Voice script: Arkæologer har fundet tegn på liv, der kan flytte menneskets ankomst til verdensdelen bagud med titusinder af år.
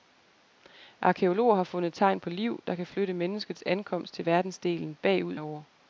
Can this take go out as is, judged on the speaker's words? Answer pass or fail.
fail